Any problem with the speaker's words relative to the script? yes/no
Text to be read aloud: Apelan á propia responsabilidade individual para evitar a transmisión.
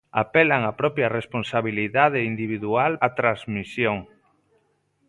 yes